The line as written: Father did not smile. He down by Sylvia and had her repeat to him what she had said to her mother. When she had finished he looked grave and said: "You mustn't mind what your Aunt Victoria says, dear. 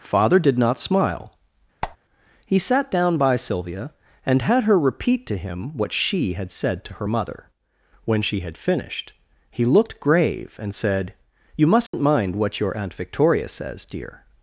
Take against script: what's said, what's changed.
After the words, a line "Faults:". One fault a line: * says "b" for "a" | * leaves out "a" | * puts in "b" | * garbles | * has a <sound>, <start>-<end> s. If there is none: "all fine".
Father did not smile. He sat down by Sylvia and had her repeat to him what she had said to her mother. When she had finished he looked grave and said: "You mustn't mind what your Aunt Victoria says, dear.
Faults:
* has a squeak, 1.8-2.0 s
* puts in "sat"
* has a dropout, 11.9-11.9 s